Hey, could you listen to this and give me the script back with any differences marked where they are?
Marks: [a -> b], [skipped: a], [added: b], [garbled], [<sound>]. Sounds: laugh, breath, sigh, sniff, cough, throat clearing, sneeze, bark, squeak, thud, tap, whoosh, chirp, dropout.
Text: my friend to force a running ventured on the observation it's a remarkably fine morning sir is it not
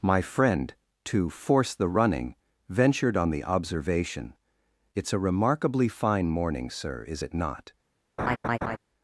my friend to force [a -> the] running ventured on the observation it's a remarkably fine morning sir is it not [laugh]